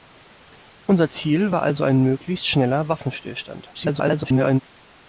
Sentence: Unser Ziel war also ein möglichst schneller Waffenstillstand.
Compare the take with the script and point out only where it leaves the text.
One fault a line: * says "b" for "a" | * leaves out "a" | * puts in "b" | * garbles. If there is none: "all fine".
* garbles